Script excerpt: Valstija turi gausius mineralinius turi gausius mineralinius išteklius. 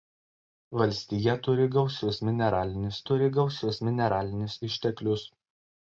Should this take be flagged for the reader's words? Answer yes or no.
no